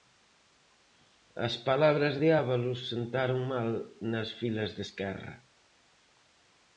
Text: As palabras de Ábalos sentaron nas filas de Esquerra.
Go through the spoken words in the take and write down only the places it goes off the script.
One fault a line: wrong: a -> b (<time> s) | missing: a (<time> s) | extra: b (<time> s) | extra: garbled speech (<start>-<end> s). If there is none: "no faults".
extra: mal (3.5 s)